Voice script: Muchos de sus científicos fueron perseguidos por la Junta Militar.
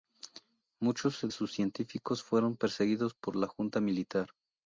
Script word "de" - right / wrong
wrong